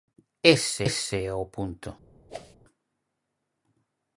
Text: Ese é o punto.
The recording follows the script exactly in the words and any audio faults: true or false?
false